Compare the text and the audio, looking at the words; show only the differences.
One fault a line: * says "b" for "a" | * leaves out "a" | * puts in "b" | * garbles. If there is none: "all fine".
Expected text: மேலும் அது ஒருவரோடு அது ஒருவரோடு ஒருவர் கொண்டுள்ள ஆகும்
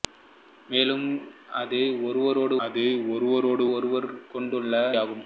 all fine